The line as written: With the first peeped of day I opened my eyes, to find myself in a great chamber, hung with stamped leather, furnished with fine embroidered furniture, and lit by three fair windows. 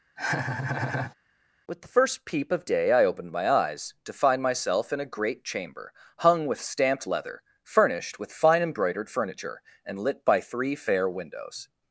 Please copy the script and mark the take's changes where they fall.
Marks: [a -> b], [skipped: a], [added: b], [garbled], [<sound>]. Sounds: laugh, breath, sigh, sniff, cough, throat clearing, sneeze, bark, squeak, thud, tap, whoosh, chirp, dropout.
[laugh] With the first [peeped -> peep] of day I opened my eyes, to find myself in a great chamber, hung with stamped leather, furnished with fine embroidered furniture, and lit by three fair windows.